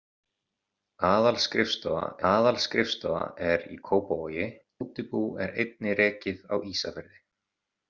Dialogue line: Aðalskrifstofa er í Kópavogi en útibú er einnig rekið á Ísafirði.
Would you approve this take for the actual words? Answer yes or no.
no